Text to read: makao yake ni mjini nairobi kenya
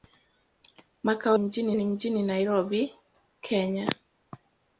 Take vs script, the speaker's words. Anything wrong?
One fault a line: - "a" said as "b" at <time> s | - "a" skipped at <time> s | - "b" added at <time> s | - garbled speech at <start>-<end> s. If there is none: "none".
- "yake" said as "mjini" at 1.4 s